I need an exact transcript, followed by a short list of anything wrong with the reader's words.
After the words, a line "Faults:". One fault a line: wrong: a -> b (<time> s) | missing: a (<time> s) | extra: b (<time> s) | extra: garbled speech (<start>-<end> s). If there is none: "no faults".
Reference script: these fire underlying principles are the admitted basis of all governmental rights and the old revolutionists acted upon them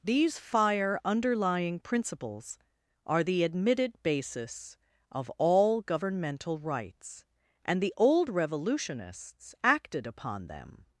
these fire underlying principles are the admitted basis of all governmental rights and the old revolutionists acted upon them
Faults:
no faults